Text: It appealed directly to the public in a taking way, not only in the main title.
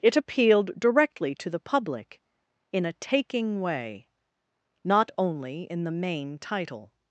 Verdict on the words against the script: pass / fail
pass